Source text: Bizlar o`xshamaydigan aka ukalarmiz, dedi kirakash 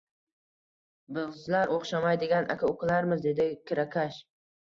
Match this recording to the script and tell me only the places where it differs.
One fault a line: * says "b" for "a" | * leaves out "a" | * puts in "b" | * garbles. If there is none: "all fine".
all fine